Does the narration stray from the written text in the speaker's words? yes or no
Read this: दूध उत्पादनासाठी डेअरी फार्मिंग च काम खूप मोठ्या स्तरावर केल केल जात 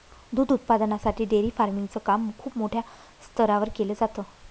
yes